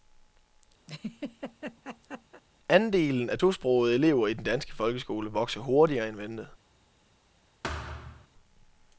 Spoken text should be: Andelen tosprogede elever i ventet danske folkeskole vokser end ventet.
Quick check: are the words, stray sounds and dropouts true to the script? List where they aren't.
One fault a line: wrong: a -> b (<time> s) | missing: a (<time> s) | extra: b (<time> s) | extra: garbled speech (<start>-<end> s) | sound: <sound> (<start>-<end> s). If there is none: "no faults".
sound: laugh (0.9-2.4 s)
extra: af (3.3 s)
wrong: ventet -> den (4.3 s)
extra: hurtigere (5.6 s)
sound: thud (7.6-8.3 s)